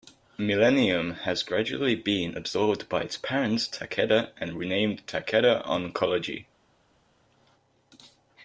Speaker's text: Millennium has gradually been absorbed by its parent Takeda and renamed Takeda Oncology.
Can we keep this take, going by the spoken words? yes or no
yes